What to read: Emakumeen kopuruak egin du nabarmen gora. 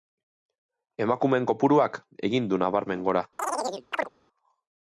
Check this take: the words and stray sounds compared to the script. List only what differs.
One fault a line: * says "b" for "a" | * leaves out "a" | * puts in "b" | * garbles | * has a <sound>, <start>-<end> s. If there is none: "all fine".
* has a chirp, 3.4-4.1 s